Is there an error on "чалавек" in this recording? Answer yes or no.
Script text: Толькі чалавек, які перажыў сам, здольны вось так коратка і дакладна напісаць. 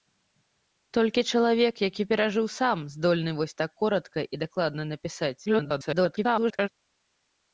no